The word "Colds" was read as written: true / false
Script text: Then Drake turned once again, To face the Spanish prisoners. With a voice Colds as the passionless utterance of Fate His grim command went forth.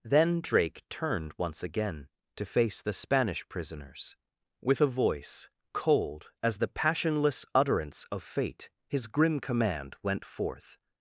false